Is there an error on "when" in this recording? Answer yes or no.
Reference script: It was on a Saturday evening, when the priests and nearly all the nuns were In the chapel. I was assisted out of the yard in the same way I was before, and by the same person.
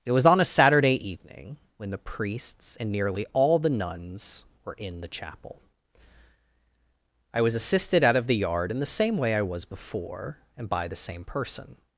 no